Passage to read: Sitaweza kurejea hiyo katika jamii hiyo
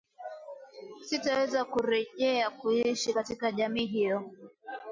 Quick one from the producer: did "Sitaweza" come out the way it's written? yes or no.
yes